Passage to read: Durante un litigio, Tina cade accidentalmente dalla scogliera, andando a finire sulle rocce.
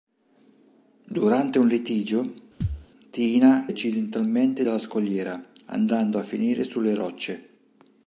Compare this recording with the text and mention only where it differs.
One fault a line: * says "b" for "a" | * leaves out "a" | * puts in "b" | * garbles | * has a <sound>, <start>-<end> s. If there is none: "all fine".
* has a thud, 2.6-2.9 s
* leaves out "cade"